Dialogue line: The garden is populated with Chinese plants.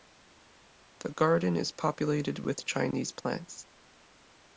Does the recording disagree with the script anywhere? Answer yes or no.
no